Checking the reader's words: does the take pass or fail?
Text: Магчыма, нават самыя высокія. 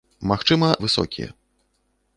fail